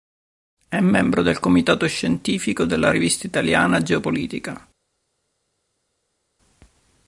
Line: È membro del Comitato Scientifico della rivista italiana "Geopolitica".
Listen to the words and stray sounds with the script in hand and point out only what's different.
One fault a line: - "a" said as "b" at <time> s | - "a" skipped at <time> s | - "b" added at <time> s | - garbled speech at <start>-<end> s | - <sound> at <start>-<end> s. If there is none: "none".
none